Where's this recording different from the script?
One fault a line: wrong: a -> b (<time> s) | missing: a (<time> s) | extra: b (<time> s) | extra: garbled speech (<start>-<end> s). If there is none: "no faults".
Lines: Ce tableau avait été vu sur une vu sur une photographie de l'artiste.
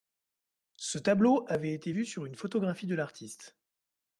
missing: vu sur une (2.3 s)